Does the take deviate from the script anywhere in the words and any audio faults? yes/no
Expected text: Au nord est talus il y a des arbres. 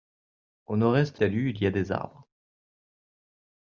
no